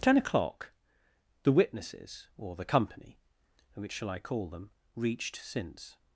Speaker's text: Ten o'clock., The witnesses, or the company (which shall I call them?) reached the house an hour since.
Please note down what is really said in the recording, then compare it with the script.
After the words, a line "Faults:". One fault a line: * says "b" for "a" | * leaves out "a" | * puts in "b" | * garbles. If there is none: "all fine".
Ten o'clock., The witnesses, or the company (which shall I call them?) reached since.
Faults:
* leaves out "the house an hour"